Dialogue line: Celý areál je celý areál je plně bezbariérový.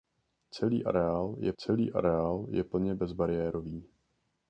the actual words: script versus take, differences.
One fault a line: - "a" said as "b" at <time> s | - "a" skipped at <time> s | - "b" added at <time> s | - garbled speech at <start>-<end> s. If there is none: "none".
none